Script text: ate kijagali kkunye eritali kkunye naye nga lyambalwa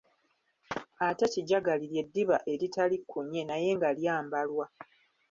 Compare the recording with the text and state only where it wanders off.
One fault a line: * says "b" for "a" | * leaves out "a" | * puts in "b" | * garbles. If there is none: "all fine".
* says "ly'eddiba" for "kkunye"